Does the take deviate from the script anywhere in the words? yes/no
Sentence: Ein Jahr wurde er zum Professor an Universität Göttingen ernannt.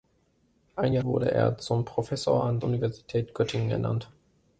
no